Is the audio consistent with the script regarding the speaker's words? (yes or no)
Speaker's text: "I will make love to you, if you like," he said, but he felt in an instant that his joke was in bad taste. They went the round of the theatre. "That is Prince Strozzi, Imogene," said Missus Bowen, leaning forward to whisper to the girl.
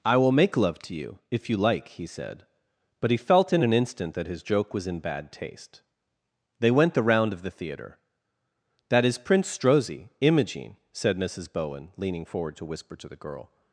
yes